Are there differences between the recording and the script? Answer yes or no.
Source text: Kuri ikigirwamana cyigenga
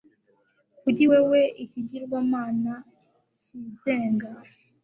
yes